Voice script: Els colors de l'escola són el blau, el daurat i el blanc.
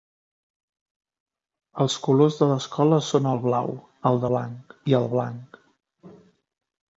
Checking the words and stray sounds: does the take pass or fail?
fail